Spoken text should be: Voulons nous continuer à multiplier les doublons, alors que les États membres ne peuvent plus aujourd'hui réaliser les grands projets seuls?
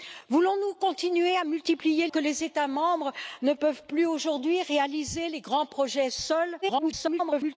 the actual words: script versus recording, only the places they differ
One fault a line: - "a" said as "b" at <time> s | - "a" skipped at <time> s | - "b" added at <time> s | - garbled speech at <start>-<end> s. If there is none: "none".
- "les doublons alors" skipped at 2.1 s
- garbled speech at 6.6-7.6 s